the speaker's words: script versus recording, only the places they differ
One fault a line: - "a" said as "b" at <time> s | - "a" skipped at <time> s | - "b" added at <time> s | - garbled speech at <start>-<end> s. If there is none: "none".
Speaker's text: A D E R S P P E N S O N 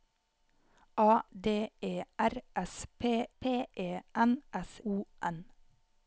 none